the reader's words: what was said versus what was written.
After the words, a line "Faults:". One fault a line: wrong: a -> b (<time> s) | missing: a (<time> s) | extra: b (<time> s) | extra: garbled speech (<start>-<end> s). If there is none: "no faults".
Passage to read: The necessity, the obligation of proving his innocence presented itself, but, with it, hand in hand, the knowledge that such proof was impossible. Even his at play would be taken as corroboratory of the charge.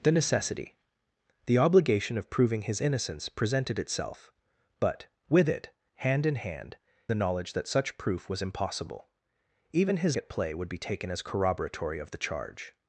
The necessity, the obligation of proving his innocence presented itself, but, with it, hand in hand, the knowledge that such proof was impossible. Even his at play would be taken as corroboratory of the charge.
Faults:
no faults